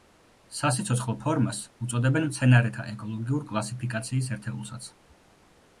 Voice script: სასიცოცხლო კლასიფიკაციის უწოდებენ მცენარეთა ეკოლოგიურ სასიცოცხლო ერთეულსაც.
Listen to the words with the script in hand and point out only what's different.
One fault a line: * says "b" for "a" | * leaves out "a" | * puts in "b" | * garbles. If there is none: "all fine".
* says "ფორმას" for "კლასიფიკაციის"
* says "კლასიფიკაციის" for "სასიცოცხლო"